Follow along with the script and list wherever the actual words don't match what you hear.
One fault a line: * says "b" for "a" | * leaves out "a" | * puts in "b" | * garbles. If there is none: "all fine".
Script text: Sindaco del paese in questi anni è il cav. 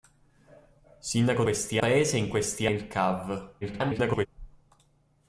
* says "questi" for "del"
* leaves out "anni"
* garbles